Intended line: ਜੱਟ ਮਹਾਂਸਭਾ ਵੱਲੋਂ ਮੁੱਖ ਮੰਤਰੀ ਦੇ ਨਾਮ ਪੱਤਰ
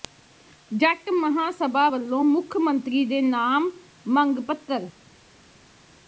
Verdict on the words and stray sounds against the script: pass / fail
fail